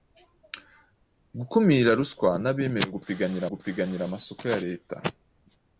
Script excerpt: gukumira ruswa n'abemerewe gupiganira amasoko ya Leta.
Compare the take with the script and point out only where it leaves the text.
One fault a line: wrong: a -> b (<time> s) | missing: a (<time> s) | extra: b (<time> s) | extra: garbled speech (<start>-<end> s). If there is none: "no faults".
extra: gupiganira (3.5 s)